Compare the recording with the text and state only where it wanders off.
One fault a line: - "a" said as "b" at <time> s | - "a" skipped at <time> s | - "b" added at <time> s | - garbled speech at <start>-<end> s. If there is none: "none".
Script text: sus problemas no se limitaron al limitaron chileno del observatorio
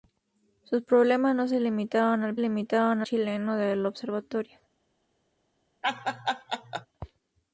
none